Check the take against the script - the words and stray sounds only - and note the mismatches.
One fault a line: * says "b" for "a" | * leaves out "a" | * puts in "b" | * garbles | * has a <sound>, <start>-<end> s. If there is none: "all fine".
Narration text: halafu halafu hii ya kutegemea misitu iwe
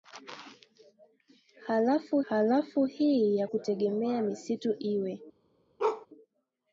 * has a bark, 5.8-6.1 s